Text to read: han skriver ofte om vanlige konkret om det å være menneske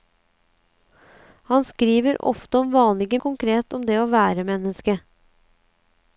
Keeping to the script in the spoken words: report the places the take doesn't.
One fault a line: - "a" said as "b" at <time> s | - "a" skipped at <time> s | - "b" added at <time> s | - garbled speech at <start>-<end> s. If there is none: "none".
none